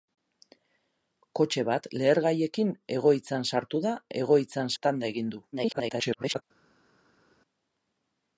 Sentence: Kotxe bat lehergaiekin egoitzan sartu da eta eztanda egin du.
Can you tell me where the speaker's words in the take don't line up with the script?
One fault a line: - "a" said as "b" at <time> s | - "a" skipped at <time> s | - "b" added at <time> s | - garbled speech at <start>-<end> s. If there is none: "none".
- "eta" said as "egoitzan" at 4.2 s
- garbled speech at 5.5-6.4 s